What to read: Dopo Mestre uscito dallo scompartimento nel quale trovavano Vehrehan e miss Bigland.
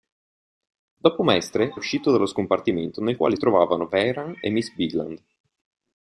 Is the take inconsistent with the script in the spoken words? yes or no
no